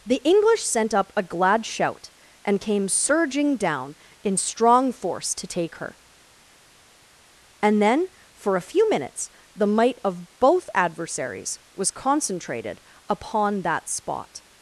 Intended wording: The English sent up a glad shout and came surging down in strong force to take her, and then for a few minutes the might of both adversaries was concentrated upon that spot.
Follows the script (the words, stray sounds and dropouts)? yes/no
yes